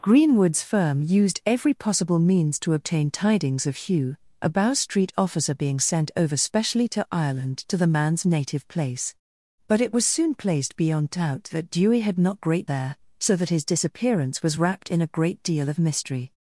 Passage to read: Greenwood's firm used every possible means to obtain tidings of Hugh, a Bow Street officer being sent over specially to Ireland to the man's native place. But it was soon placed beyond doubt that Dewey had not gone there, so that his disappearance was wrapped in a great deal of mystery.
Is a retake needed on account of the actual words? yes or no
yes